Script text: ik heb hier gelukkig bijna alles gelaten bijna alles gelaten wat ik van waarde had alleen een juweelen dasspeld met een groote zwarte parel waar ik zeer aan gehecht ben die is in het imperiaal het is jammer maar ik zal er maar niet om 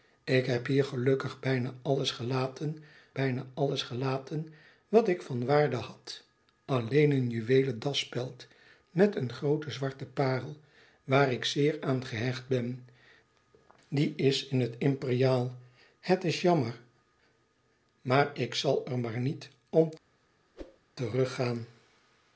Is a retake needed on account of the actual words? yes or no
no